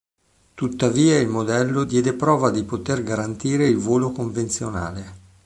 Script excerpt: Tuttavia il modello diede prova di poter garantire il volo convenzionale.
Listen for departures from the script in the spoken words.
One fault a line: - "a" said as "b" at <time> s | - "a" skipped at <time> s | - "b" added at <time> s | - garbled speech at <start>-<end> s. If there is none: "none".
none